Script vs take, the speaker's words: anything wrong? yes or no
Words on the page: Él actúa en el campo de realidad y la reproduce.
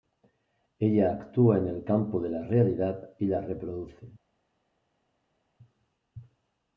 yes